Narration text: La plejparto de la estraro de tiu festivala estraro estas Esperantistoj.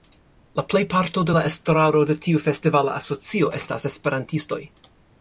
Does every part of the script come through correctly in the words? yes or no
no